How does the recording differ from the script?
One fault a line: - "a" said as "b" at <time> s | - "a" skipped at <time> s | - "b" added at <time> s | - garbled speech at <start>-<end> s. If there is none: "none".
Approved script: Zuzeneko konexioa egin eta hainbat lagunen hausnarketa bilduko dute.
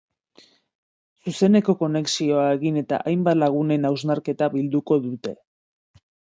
none